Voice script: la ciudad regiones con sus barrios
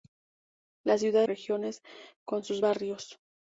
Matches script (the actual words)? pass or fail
pass